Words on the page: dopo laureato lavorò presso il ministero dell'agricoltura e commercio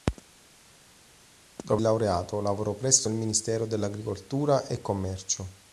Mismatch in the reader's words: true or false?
false